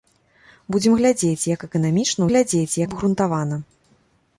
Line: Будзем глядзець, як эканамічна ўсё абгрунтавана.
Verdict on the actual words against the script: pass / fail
fail